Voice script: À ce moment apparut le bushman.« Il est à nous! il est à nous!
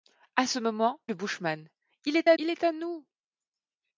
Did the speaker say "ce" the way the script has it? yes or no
yes